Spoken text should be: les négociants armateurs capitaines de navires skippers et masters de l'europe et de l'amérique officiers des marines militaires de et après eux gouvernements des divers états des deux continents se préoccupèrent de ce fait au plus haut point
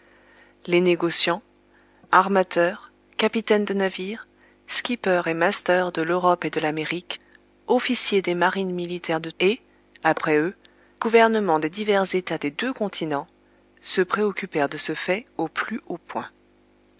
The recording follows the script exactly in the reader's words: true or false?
true